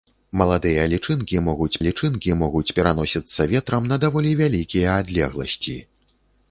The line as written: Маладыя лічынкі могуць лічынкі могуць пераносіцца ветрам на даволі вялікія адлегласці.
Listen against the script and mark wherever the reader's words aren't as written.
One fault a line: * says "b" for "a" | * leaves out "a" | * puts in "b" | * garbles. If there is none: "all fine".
all fine